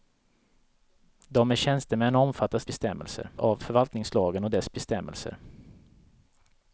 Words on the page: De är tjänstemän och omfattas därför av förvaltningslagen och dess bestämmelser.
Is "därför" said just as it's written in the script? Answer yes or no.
no